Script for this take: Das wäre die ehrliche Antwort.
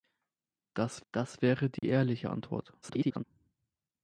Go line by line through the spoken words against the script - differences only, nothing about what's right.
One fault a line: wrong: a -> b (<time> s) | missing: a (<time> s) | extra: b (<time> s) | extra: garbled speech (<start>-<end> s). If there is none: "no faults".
extra: das (1.1 s)
extra: garbled speech (2.8-3.2 s)